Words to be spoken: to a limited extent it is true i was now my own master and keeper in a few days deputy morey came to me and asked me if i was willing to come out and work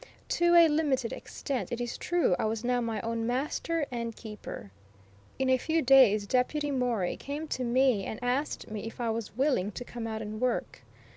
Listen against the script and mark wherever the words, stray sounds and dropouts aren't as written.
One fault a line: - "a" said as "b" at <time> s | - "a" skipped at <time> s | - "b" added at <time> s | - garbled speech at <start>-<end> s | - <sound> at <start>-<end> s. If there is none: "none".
none